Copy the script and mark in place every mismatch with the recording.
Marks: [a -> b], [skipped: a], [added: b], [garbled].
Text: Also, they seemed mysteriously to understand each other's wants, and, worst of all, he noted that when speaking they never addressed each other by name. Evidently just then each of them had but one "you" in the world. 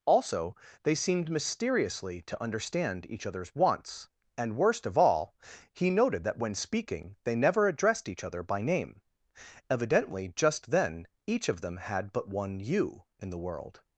Also, they seemed mysteriously to understand each other's wants, and, worst of all, he noted that when speaking they never addressed each other by name. Evidently just then each of them had but one "you" in the world.